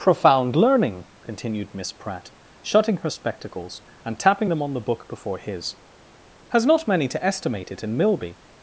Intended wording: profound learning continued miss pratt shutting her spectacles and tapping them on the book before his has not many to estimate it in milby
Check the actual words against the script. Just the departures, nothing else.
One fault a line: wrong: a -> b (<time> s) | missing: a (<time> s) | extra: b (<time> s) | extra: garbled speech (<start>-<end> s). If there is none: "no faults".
no faults